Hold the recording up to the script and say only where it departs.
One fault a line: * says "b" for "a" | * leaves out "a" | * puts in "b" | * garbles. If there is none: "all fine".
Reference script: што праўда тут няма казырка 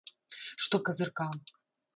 * leaves out "праўда тут няма"